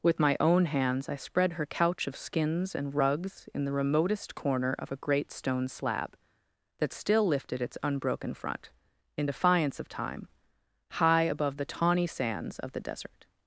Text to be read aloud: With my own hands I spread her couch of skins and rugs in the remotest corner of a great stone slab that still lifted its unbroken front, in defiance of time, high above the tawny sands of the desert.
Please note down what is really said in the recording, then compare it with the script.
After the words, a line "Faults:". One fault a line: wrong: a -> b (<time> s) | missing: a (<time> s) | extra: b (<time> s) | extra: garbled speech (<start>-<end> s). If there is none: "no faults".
With my own hands I spread her couch of skins and rugs in the remotest corner of a great stone slab that still lifted its unbroken front, in defiance of time, high above the tawny sands of the desert.
Faults:
no faults